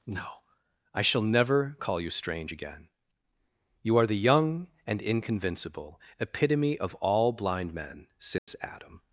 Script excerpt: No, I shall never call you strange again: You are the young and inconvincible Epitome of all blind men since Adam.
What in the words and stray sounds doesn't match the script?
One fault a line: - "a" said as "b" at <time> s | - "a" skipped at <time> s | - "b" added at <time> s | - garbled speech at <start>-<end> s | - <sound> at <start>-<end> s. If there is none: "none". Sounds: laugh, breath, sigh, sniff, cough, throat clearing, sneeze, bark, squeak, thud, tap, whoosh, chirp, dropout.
- dropout at 8.4-8.5 s